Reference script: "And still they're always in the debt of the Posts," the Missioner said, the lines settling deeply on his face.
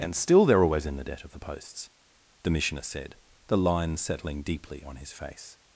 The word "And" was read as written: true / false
true